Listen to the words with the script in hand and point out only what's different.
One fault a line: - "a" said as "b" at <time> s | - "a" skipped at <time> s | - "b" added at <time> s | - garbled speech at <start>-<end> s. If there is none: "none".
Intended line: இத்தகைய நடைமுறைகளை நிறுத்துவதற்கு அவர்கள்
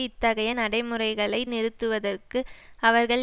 none